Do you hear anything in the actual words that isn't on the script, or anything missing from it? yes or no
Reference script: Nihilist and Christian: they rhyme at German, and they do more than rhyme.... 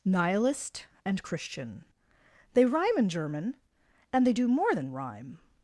yes